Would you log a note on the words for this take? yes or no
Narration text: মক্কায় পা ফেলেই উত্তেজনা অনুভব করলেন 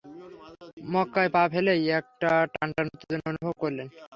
yes